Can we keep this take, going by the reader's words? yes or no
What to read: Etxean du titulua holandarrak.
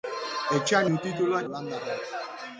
yes